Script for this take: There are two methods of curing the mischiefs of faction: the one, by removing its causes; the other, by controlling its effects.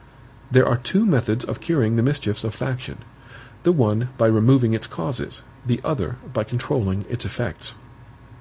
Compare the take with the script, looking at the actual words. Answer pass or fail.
pass